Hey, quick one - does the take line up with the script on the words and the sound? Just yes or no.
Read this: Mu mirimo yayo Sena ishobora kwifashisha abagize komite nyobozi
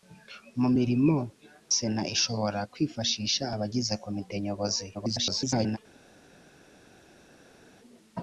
no